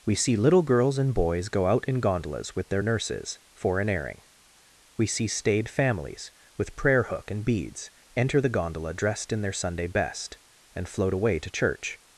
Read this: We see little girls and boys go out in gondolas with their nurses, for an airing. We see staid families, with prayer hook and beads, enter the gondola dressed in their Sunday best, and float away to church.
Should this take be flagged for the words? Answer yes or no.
no